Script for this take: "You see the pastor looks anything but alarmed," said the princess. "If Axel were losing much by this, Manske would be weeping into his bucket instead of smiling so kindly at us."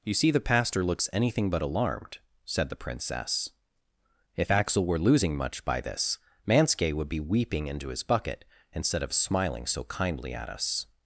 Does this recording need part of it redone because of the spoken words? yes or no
no